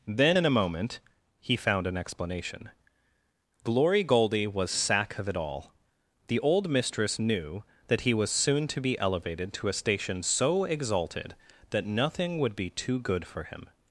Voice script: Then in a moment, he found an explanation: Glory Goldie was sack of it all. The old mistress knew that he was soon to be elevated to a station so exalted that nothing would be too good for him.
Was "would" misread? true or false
false